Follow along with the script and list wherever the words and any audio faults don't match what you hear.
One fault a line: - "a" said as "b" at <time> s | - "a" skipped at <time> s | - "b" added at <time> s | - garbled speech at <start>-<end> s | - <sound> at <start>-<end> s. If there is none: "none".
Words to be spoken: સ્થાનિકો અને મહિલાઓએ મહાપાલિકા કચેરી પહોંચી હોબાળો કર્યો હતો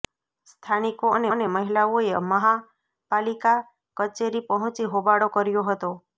- "અને" added at 1.3 s